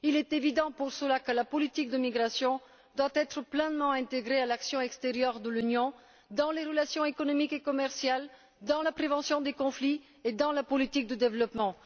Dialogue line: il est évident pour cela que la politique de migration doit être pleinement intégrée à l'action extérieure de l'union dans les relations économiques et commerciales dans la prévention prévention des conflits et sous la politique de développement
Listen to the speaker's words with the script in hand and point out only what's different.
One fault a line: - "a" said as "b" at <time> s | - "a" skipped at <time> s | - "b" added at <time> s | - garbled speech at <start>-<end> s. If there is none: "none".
- "prévention" skipped at 9.4 s
- "sous" said as "dans" at 10.3 s